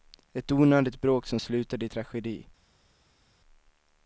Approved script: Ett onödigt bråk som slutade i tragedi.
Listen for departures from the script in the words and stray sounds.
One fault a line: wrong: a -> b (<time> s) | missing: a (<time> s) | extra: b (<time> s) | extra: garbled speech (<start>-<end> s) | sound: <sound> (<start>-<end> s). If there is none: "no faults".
no faults